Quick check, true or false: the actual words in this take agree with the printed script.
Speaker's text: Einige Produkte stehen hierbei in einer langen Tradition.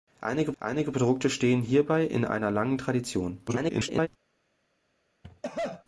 false